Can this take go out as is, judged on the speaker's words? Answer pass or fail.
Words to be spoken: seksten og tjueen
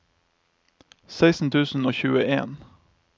fail